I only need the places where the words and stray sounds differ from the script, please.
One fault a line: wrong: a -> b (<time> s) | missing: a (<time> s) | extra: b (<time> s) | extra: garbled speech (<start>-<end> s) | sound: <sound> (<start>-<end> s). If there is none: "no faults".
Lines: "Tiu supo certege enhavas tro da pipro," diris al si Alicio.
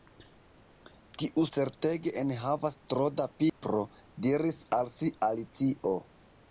missing: supo (1.4 s)
sound: dropout (3.5-3.6 s)